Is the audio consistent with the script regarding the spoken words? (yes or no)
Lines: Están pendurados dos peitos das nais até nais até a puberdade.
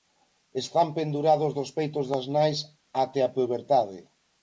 no